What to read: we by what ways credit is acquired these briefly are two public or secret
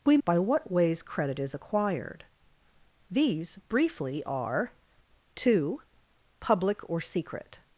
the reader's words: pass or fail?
pass